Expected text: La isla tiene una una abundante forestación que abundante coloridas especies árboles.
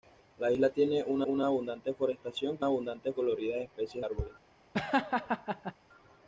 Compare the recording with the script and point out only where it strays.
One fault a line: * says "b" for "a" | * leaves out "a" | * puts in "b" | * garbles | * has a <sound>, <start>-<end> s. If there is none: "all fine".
* has a laugh, 4.7-5.7 s